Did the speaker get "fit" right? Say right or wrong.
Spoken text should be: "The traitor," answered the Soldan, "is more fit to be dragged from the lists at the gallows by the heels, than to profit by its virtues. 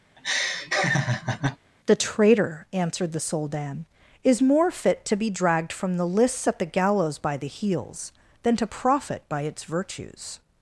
right